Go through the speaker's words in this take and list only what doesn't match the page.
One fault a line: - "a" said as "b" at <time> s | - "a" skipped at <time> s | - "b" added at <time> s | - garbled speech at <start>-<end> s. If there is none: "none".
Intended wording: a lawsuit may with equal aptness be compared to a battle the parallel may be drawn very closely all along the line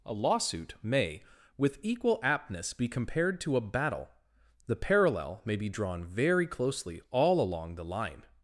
none